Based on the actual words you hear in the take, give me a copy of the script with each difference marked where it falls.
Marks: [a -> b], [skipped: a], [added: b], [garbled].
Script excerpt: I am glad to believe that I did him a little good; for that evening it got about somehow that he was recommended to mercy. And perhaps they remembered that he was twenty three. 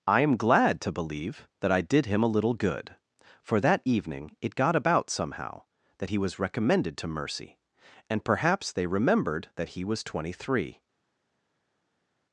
I am glad to believe that I did him a little good; for that evening it got about somehow that he was recommended to mercy. And perhaps they remembered that he was twenty three.